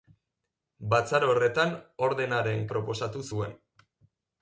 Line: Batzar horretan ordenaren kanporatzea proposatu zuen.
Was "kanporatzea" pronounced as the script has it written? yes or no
no